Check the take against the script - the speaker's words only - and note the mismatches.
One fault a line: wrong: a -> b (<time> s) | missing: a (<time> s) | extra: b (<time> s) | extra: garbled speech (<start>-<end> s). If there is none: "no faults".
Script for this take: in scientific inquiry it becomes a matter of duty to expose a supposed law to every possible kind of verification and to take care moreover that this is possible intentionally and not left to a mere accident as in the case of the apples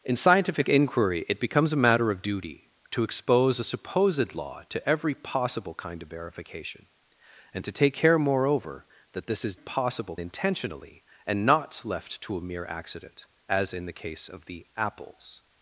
no faults